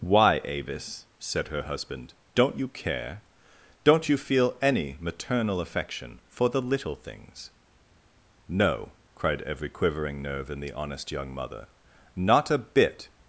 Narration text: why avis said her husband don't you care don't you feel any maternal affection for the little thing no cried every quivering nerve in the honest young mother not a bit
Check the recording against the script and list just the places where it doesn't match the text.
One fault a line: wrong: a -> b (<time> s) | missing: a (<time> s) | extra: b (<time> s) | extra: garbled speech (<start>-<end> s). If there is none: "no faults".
wrong: thing -> things (7.0 s)